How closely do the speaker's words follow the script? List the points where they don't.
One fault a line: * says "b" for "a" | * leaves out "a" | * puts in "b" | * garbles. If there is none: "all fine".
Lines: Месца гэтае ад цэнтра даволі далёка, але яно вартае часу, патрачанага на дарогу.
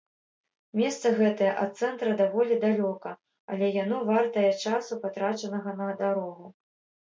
all fine